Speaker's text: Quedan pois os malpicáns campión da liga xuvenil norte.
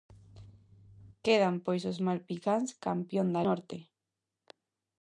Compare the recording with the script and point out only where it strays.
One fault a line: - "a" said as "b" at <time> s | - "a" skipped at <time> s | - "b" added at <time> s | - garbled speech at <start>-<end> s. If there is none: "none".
- "liga xuvenil" skipped at 3.4 s